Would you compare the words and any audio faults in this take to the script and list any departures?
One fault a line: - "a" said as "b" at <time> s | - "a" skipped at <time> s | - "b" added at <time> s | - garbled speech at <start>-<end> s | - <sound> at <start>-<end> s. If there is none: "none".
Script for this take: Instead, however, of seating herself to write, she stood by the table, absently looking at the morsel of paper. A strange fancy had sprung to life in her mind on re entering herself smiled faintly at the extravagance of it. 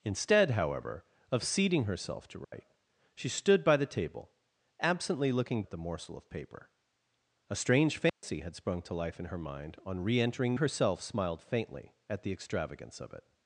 - dropout at 2.4-2.5 s
- dropout at 8.1-8.2 s